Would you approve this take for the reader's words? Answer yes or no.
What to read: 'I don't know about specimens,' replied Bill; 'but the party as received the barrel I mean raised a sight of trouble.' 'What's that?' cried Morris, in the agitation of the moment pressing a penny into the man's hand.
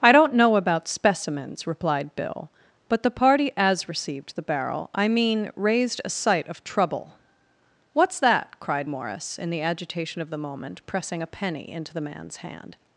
yes